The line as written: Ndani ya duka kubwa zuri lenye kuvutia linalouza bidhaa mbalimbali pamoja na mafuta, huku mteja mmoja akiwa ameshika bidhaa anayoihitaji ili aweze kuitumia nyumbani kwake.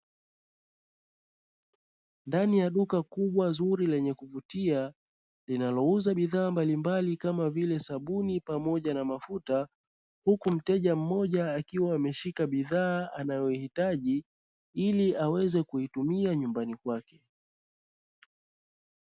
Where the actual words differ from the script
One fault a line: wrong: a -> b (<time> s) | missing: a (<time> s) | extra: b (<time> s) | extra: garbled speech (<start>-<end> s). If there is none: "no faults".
extra: kama vile sabuni (7.2 s)